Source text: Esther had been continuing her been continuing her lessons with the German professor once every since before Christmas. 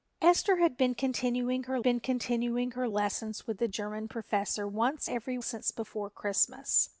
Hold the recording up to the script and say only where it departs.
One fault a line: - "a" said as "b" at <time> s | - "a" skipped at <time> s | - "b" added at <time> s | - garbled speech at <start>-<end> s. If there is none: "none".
none